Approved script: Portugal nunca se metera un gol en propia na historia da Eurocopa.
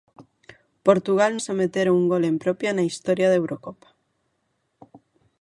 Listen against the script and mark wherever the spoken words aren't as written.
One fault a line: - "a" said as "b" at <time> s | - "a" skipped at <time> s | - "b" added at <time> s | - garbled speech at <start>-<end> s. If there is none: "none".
- "nunca" skipped at 1.4 s